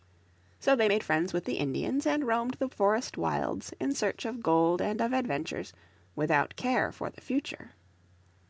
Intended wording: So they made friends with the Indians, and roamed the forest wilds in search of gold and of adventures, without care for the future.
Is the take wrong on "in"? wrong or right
right